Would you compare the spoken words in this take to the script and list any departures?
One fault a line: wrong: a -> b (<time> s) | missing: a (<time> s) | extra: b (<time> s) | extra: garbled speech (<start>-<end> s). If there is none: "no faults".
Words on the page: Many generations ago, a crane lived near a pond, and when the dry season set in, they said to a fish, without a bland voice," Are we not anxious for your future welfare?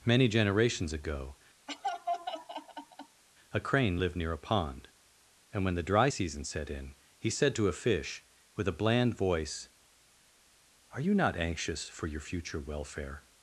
wrong: they -> he (7.2 s)
wrong: without -> with (8.5 s)
wrong: we -> you (11.0 s)